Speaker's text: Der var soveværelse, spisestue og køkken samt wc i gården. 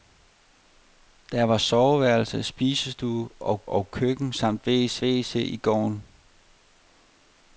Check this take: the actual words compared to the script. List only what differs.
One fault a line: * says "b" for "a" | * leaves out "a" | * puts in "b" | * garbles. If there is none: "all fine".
* puts in "og"
* puts in "wc"